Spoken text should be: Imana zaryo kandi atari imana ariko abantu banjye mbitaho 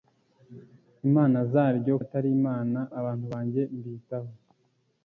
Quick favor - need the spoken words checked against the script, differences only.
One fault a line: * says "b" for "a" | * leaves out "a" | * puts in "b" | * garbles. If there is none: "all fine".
* leaves out "kandi"
* leaves out "ariko"